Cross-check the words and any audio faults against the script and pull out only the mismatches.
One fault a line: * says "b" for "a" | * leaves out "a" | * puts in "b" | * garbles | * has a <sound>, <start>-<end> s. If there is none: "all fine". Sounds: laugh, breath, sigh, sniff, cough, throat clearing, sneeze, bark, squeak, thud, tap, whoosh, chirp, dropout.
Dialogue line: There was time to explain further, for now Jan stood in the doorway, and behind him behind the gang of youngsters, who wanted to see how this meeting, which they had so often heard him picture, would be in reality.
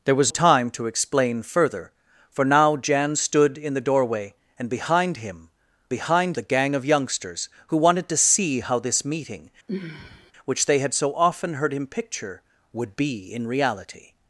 * has a sigh, 9.7-10.3 s